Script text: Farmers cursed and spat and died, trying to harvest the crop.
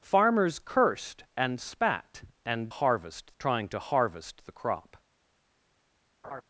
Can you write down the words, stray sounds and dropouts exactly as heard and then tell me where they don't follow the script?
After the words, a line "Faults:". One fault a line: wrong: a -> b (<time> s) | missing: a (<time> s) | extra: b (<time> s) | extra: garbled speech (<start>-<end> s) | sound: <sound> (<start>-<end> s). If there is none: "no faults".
Farmers cursed and spat and harvest, trying to harvest the crop.
Faults:
wrong: died -> harvest (2.7 s)
sound: laugh (6.2-6.4 s)